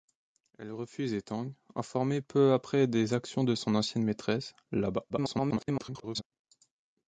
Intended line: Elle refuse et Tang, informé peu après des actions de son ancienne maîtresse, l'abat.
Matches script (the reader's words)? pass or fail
fail